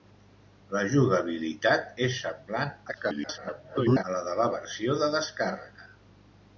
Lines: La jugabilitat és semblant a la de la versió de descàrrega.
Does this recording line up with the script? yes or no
no